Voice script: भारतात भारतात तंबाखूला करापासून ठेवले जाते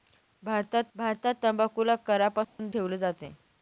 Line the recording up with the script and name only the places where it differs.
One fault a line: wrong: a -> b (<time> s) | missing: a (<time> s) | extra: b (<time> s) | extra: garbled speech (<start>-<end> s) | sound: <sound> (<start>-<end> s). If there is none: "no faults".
sound: dropout (2.4-2.6 s)